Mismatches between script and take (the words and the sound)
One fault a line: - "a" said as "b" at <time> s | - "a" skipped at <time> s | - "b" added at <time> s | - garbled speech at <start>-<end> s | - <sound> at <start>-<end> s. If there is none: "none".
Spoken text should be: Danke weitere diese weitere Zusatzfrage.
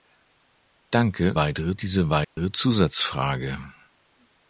- dropout at 2.2-2.4 s